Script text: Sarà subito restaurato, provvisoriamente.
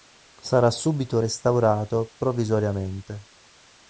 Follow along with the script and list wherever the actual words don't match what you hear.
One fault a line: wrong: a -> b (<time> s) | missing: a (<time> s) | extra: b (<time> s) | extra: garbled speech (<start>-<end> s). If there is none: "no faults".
no faults